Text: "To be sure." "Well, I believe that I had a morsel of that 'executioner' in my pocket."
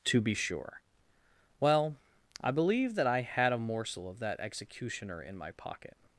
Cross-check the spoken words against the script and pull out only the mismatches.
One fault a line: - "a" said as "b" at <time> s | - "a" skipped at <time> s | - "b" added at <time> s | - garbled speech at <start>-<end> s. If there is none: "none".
none